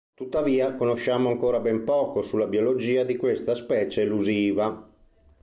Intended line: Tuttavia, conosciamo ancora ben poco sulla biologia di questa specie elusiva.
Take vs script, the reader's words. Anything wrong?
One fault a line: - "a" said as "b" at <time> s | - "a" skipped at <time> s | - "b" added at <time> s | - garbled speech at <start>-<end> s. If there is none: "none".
none